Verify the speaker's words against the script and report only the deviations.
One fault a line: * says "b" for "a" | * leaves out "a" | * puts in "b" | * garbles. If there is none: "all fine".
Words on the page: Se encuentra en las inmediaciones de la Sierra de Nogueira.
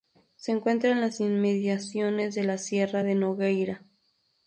all fine